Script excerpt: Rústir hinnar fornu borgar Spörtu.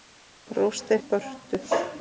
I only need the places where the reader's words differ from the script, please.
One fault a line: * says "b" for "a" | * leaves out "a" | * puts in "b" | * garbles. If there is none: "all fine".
* leaves out "hinnar fornu borgar"